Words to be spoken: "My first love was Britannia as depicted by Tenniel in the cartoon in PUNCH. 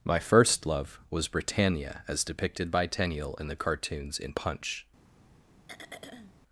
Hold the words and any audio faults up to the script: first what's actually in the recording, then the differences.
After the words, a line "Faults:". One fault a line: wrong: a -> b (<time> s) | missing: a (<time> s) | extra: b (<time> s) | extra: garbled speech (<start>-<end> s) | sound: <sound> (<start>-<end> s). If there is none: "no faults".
"My first love was Britannia as depicted by Tenniel in the cartoons in PUNCH.
Faults:
wrong: cartoon -> cartoons (3.5 s)
sound: throat clearing (5.7-6.3 s)